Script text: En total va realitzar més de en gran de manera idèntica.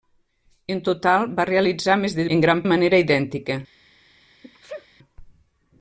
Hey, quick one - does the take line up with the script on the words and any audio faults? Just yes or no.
no